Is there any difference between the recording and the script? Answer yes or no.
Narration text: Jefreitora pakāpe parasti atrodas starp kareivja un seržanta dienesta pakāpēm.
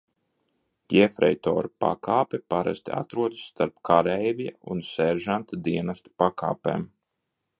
no